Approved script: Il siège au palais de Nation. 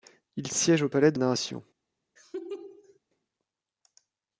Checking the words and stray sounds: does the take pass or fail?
fail